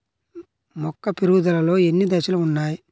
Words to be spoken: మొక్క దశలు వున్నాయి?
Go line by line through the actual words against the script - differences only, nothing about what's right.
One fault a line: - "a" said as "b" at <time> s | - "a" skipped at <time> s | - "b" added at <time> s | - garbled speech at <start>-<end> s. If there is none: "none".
- "పెరుగుదలలో ఎన్ని" added at 1.1 s